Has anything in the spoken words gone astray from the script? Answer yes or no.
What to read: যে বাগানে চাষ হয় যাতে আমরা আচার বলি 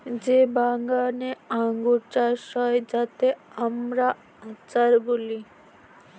yes